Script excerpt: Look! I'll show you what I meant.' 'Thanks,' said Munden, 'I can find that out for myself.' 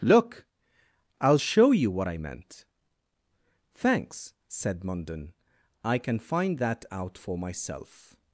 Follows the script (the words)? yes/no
yes